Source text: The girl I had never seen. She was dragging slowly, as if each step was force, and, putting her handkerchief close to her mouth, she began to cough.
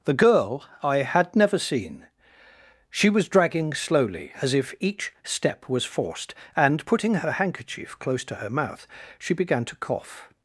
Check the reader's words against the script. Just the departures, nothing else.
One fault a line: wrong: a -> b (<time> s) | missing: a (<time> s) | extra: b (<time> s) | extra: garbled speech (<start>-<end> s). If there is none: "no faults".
wrong: force -> forced (5.8 s)